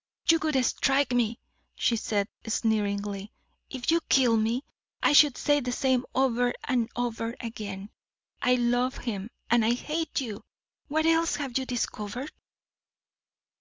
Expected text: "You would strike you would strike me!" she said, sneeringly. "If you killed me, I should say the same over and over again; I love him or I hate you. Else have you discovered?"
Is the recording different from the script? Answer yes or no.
yes